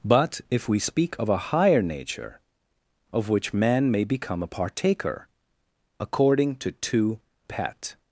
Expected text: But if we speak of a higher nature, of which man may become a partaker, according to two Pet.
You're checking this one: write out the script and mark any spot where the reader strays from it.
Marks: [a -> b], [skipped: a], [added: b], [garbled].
But if we speak of a higher nature, of which man may become a partaker, according to two Pet.